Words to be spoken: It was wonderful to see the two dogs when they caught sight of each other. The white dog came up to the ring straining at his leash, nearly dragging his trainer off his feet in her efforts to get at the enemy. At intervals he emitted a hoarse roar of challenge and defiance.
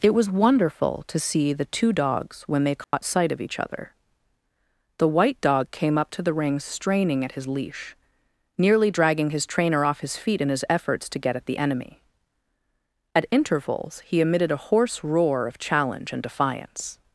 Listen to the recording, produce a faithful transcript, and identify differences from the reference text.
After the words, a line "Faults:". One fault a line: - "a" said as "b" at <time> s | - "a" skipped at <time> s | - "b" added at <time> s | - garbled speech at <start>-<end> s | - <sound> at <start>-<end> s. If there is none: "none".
It was wonderful to see the two dogs when they caught sight of each other. The white dog came up to the ring straining at his leash, nearly dragging his trainer off his feet in his efforts to get at the enemy. At intervals he emitted a hoarse roar of challenge and defiance.
Faults:
- dropout at 2.8-2.9 s
- "her" said as "his" at 10.5 s